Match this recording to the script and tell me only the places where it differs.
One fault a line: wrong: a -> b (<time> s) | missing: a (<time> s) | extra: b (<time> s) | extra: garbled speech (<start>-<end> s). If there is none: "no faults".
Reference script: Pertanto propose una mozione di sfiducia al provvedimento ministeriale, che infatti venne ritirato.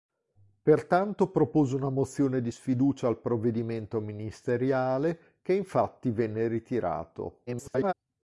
extra: garbled speech (7.5-7.9 s)